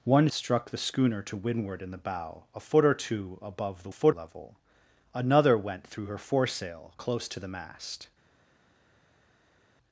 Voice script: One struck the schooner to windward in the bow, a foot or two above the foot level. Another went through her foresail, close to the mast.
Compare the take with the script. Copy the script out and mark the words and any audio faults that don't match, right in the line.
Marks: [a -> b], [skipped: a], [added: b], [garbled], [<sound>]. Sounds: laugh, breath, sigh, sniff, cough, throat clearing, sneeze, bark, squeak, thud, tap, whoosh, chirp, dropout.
One struck the schooner to windward in the bow, a foot or two above the foot level. Another went through her foresail, close to the mast.